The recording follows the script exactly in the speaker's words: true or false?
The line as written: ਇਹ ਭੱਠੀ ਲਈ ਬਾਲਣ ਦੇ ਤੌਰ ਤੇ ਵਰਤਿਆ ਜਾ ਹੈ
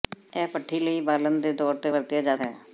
true